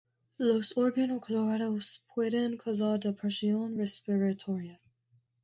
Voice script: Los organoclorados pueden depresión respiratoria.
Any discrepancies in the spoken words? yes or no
yes